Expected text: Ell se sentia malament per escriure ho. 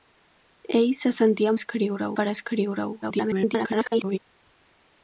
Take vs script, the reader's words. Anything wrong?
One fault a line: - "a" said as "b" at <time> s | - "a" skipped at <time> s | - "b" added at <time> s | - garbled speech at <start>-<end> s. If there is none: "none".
- "malament" said as "escriure" at 1.6 s
- garbled speech at 3.0-4.2 s